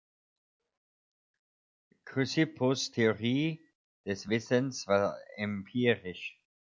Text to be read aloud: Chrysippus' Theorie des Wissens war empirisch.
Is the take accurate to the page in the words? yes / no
yes